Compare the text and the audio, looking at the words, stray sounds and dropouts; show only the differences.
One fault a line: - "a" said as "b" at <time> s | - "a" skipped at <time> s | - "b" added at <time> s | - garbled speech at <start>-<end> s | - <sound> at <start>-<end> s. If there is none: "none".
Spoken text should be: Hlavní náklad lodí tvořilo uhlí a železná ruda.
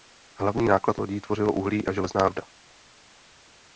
none